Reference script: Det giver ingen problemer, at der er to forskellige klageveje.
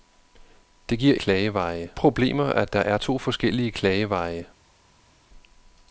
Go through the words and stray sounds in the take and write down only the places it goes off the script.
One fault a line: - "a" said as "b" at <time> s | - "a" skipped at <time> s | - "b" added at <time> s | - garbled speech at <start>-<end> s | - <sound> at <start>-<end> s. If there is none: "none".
- "ingen" said as "klageveje" at 1.2 s